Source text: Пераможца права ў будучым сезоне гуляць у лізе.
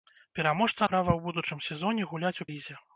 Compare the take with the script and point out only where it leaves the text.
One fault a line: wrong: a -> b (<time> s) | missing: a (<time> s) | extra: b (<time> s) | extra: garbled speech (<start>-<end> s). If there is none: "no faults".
no faults